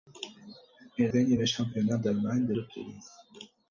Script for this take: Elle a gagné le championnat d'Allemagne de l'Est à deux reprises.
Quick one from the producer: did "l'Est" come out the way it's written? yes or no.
no